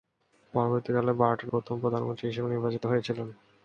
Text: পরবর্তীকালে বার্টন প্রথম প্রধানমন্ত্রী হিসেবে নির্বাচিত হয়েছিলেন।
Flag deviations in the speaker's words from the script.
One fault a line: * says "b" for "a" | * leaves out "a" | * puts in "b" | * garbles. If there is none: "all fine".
all fine